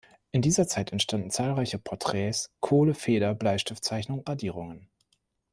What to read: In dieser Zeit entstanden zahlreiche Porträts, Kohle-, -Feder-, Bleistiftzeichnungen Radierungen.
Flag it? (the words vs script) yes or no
no